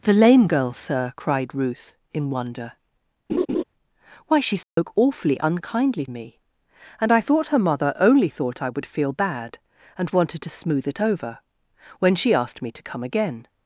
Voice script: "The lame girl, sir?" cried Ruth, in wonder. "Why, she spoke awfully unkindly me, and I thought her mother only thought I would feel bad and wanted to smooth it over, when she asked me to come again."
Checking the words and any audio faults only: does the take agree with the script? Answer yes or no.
no